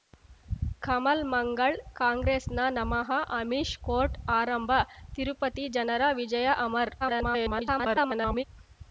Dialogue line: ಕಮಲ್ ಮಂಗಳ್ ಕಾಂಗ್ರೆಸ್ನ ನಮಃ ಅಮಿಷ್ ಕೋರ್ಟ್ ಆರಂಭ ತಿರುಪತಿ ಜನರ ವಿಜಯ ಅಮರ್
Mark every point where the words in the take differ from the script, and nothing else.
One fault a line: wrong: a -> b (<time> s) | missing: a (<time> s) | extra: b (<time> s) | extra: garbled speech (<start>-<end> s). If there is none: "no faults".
extra: garbled speech (7.0-8.4 s)